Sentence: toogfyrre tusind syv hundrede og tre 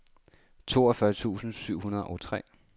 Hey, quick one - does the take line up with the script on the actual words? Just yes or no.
yes